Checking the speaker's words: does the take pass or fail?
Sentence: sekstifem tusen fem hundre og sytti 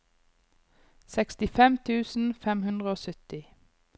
pass